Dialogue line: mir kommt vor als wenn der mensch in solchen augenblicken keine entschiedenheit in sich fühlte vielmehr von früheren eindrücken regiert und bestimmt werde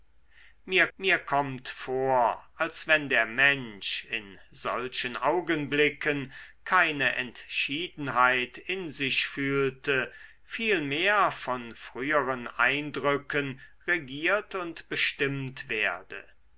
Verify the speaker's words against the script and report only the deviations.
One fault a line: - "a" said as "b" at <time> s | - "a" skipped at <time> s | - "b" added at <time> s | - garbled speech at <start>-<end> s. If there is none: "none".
- "mir" added at 1.0 s